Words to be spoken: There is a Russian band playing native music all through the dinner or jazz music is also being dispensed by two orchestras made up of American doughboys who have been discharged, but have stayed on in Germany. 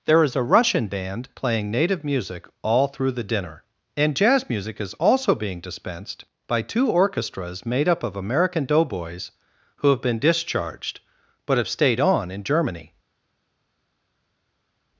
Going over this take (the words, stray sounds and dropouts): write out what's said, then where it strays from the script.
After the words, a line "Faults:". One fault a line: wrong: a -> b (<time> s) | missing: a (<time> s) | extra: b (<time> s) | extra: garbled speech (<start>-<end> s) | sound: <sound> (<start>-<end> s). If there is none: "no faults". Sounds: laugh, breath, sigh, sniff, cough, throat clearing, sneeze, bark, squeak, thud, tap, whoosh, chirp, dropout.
There is a Russian band playing native music all through the dinner and jazz music is also being dispensed by two orchestras made up of American doughboys who have been discharged, but have stayed on in Germany.
Faults:
wrong: or -> and (4.0 s)